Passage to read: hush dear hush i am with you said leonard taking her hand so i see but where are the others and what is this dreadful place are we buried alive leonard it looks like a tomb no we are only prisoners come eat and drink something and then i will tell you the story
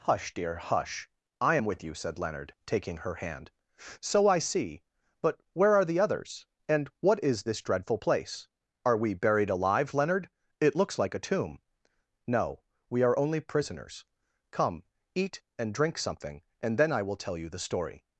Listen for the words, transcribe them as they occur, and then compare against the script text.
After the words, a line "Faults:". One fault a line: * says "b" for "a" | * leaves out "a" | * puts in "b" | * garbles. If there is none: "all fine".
hush dear hush i am with you said leonard taking her hand so i see but where are the others and what is this dreadful place are we buried alive leonard it looks like a tomb no we are only prisoners come eat and drink something and then i will tell you the story
Faults:
all fine